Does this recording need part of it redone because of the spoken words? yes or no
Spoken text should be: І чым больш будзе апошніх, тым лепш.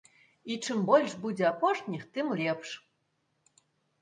no